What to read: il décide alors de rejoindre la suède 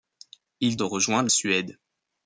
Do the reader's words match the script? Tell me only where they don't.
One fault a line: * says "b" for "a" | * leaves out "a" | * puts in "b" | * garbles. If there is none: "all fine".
* leaves out "décide alors"
* leaves out "la"